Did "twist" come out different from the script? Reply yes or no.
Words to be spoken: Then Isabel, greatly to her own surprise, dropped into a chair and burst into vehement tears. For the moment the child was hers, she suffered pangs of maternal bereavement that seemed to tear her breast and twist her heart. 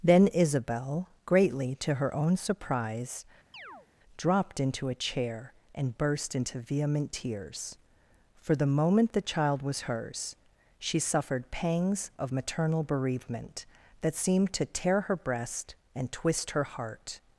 no